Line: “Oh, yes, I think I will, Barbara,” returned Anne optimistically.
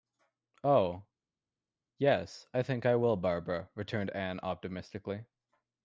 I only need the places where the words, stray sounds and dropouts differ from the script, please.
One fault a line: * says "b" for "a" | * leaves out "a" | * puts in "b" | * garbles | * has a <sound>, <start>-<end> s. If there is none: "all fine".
all fine